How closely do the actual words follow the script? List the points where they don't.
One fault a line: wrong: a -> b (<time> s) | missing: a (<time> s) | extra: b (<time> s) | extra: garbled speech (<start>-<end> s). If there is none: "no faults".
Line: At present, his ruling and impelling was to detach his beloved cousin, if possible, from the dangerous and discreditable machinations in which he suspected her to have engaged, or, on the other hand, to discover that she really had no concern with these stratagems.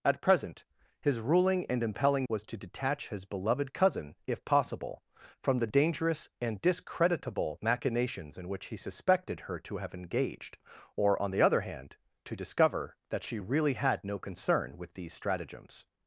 no faults